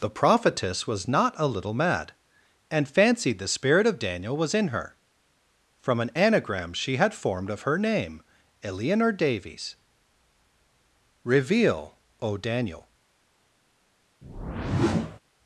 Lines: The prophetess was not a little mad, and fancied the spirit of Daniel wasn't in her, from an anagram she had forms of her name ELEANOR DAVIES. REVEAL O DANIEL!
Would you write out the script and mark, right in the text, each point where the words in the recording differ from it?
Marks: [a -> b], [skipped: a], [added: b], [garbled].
The prophetess was not a little mad, and fancied the spirit of Daniel [wasn't -> was] in her, from an anagram she had [forms -> formed] of her name ELEANOR DAVIES. REVEAL O DANIEL!